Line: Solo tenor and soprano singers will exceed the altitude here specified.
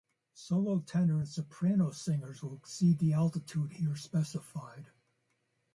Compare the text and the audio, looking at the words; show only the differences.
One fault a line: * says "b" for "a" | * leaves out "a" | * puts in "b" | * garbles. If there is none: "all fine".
all fine